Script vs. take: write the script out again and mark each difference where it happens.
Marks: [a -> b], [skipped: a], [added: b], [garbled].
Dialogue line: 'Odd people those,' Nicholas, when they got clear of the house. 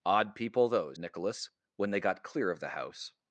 'Odd people those,' Nicholas, when they got clear of the house.